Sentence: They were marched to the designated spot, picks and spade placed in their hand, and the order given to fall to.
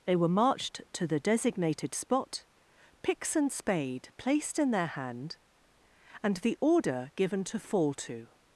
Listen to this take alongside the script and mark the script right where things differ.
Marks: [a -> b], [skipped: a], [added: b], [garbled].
They were marched to the designated spot, picks and spade placed in their hand, and the order given to fall to.